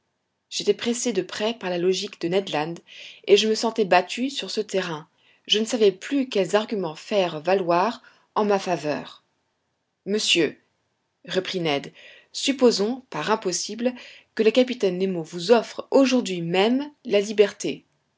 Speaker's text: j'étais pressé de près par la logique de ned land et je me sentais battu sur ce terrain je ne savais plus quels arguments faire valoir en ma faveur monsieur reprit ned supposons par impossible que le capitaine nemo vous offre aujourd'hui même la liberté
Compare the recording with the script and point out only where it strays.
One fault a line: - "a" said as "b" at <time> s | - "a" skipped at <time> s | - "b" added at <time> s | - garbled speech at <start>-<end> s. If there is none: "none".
none